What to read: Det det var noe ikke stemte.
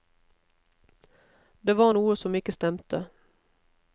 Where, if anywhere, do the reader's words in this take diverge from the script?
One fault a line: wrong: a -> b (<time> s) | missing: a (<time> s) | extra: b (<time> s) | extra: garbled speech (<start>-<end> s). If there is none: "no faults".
missing: det (1.8 s)
extra: som (2.2 s)